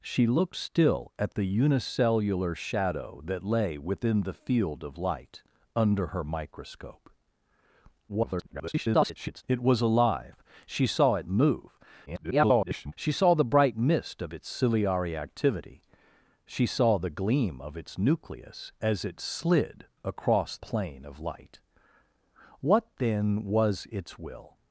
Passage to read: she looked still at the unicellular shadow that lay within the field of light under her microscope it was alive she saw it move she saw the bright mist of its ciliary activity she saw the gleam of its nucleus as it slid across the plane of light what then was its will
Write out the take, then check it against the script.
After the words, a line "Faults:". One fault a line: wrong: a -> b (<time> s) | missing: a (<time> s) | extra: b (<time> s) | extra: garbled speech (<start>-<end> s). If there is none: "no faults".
she looked still at the unicellular shadow that lay within the field of light under her microscope [garbled] it was alive she saw it move [garbled] she saw the bright mist of its ciliary activity she saw the gleam of its nucleus as it slid across plane of light what then was its will
Faults:
extra: garbled speech (8.1-9.4 s)
extra: garbled speech (12.1-12.9 s)
missing: the (20.6 s)